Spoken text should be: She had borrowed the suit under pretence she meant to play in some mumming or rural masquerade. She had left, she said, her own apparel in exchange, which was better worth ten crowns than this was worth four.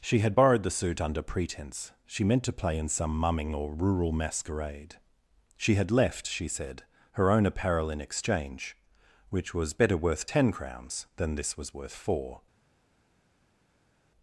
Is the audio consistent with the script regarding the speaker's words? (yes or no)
yes